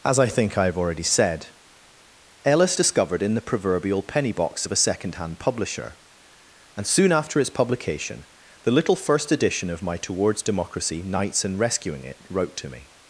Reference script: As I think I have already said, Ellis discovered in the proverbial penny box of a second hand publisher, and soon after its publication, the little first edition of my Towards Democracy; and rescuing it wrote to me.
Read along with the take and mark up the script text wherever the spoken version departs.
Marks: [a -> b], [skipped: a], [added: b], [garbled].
As I think I have already said, Ellis discovered in the proverbial penny box of a second hand publisher, and soon after its publication, the little first edition of my Towards Democracy; [added: knights] and rescuing it wrote to me.